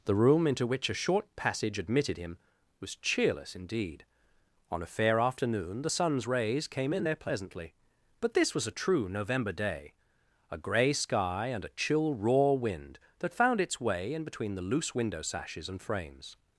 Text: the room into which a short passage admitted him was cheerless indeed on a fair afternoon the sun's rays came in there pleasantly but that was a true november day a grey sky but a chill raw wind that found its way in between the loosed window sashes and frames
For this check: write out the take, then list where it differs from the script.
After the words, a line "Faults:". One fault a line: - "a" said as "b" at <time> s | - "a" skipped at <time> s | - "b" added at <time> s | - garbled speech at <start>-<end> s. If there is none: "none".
the room into which a short passage admitted him was cheerless indeed on a fair afternoon the sun's rays came in there pleasantly but this was a true november day a grey sky and a chill raw wind that found its way in between the loose window sashes and frames
Faults:
- "that" said as "this" at 8.3 s
- "but" said as "and" at 11.5 s
- "loosed" said as "loose" at 14.6 s